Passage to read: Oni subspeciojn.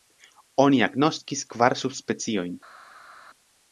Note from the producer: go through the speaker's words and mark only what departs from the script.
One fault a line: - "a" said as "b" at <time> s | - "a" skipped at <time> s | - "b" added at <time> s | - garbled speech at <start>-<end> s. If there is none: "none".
- "agnoskis kvar" added at 0.9 s